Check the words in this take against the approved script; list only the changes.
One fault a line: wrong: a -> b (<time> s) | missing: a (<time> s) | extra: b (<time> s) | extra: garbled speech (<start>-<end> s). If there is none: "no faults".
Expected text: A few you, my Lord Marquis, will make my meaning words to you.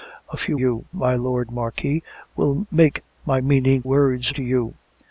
no faults